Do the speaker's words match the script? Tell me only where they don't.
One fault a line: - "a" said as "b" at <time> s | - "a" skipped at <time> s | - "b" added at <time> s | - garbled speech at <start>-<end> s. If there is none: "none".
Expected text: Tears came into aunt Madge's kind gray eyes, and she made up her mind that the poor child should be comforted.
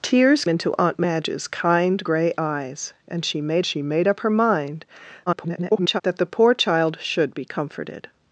- "came" skipped at 0.5 s
- "she made" added at 3.6 s
- garbled speech at 5.3-6.0 s